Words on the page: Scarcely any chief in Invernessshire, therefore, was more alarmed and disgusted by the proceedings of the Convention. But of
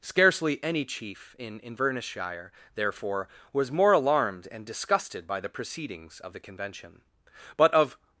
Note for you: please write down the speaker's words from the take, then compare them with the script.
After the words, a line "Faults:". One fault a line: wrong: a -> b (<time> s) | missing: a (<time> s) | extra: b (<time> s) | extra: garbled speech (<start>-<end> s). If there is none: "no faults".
Scarcely any chief in Invernessshire, therefore, was more alarmed and disgusted by the proceedings of the Convention. But of
Faults:
no faults